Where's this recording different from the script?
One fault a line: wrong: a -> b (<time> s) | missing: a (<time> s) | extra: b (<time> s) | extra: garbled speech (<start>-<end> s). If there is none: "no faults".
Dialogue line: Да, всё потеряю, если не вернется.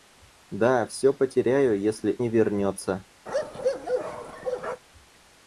no faults